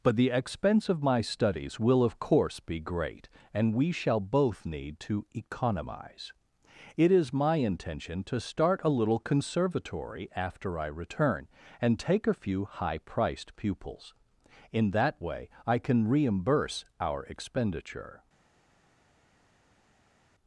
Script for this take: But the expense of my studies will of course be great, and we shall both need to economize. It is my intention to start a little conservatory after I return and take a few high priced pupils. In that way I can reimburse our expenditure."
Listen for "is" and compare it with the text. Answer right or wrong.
right